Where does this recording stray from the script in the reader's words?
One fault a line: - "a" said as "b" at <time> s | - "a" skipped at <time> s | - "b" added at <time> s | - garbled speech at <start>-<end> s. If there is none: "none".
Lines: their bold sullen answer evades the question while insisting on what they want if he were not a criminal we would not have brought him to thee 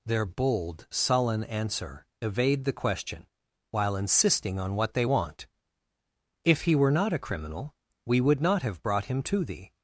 - "evades" said as "evade" at 2.2 s